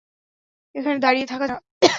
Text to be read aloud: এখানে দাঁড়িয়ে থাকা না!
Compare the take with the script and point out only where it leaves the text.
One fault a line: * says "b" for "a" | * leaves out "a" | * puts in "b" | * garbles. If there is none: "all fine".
all fine